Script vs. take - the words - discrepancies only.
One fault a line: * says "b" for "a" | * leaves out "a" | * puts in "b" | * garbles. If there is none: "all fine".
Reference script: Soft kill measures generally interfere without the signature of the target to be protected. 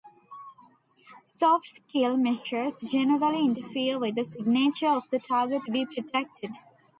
* says "with" for "without"